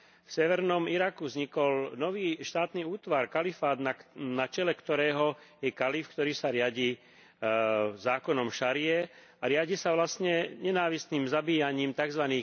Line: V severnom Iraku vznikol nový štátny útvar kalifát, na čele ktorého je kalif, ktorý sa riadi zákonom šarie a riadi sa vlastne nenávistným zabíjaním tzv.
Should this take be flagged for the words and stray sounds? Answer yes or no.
no